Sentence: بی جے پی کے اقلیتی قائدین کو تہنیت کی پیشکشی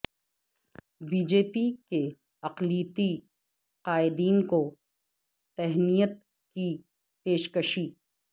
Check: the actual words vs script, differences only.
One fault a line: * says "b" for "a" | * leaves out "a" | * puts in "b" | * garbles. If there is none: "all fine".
all fine